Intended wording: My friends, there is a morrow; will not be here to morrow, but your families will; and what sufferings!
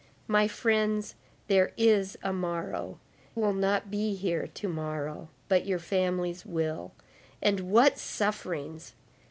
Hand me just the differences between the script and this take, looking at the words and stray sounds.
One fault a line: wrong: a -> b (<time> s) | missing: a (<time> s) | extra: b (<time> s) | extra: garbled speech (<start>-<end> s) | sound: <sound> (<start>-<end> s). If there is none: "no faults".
no faults